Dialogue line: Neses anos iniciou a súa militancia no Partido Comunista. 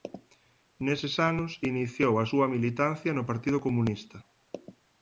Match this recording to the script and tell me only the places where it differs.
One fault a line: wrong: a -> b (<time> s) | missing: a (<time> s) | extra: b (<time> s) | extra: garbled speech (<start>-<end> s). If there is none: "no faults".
no faults